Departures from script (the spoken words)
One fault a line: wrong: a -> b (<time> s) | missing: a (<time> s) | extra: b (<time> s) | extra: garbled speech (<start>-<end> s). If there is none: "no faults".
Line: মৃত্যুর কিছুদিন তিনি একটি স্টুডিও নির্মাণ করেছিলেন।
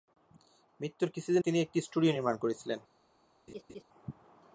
no faults